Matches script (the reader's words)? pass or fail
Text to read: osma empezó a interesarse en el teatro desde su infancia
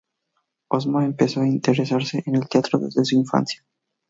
pass